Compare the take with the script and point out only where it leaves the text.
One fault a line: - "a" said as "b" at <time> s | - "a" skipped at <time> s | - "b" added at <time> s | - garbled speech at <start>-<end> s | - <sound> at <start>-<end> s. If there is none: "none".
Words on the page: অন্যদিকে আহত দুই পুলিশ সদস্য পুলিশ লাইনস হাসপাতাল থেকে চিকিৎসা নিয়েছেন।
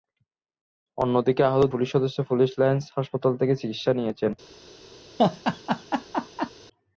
- "দুই" skipped at 1.6 s
- laugh at 5.2-6.5 s